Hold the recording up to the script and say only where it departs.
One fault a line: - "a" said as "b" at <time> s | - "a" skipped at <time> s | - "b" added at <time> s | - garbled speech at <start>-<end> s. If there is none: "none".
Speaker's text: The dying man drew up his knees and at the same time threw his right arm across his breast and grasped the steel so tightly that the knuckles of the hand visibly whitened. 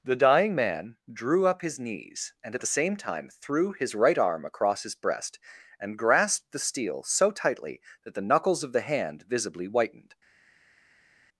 none